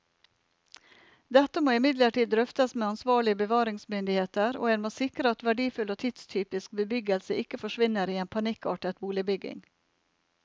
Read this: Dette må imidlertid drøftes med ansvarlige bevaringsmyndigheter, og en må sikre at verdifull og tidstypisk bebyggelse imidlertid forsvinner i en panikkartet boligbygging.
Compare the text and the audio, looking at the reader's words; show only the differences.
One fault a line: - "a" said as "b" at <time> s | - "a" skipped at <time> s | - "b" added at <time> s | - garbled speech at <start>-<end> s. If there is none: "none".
- "imidlertid" said as "ikke" at 7.4 s